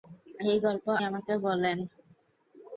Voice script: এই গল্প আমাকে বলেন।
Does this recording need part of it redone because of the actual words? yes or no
no